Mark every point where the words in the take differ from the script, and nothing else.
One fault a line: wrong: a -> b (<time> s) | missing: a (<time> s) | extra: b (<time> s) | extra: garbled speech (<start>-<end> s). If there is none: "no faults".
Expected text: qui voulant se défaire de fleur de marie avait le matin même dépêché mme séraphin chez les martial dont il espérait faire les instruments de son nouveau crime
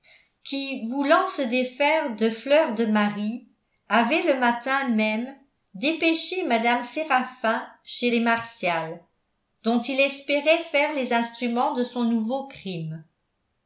no faults